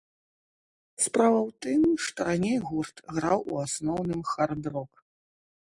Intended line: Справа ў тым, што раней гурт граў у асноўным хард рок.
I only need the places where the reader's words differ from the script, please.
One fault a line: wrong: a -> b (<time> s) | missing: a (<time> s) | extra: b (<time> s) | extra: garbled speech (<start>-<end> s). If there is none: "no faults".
no faults